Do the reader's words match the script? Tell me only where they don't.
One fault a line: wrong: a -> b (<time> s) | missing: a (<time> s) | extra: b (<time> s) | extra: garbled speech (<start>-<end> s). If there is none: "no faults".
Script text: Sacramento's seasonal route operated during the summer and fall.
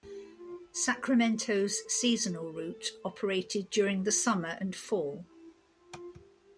no faults